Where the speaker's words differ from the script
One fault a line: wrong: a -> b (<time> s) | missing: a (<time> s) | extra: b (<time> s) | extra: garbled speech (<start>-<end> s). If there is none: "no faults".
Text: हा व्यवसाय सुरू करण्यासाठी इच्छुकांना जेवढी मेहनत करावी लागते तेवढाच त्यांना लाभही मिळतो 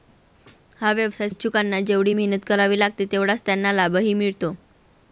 missing: सुरू करण्यासाठी (1.3 s)